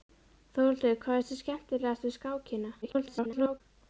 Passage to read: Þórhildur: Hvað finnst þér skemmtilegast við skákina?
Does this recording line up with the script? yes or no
no